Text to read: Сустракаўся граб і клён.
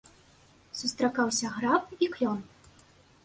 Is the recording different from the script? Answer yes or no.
no